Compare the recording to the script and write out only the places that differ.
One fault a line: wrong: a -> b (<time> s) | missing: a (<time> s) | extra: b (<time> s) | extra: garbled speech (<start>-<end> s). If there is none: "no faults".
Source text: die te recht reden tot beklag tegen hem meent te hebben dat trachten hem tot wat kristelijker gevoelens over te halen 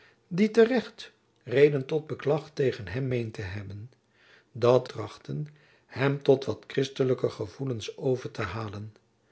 no faults